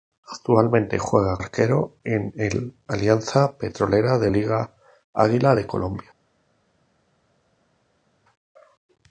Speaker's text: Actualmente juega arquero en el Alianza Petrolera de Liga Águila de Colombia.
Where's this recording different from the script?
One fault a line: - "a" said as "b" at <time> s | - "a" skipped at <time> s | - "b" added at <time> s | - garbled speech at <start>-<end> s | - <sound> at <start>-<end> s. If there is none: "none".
none